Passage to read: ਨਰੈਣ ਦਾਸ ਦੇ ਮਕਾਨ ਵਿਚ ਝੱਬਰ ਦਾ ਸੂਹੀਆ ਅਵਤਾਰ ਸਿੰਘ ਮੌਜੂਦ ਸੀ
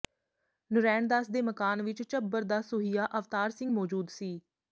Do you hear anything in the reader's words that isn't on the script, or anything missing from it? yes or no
no